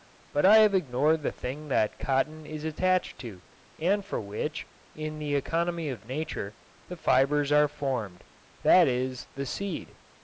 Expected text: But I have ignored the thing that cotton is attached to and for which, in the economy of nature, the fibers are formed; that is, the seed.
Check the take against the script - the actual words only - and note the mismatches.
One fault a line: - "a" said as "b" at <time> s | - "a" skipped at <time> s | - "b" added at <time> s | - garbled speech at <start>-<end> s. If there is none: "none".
none